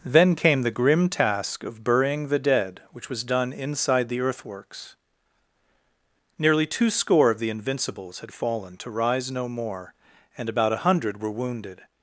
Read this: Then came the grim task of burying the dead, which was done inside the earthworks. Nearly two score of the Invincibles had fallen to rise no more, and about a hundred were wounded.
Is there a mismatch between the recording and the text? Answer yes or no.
no